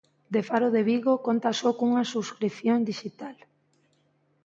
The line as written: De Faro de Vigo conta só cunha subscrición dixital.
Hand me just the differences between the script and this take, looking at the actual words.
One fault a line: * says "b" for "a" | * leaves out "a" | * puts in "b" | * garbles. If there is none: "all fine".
all fine